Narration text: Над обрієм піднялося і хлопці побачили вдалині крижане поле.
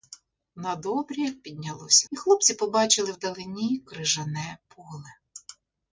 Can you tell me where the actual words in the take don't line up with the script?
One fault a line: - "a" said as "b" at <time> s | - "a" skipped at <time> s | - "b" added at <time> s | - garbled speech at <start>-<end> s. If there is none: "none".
none